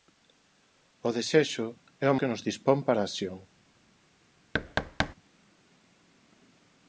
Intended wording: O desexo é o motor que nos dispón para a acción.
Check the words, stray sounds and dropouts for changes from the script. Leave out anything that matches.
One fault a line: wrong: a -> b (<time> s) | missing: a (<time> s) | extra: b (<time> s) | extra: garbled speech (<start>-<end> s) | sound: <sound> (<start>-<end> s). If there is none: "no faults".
missing: motor (2.2 s)
sound: thud (4.5-5.1 s)